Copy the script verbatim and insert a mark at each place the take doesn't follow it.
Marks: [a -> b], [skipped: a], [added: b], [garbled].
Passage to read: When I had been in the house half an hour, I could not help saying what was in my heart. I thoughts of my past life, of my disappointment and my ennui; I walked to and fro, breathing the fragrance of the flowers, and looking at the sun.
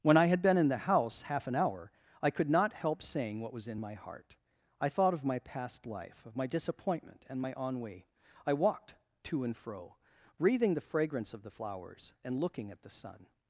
When I had been in the house half an hour, I could not help saying what was in my heart. I [thoughts -> thought] of my past life, of my disappointment and my ennui; I walked to and fro, breathing the fragrance of the flowers, and looking at the sun.